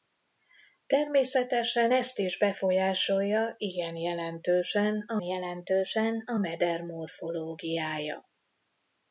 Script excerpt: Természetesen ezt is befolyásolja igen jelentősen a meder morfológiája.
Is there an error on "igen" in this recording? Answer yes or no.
no